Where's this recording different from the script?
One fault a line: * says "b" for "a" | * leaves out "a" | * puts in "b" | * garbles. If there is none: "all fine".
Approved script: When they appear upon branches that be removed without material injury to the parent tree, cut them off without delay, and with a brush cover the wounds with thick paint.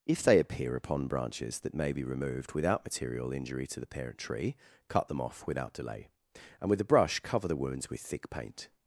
* says "If" for "When"
* puts in "may"